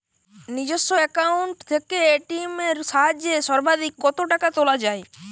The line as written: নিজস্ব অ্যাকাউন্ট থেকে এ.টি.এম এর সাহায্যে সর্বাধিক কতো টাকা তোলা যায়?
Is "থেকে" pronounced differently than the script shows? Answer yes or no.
no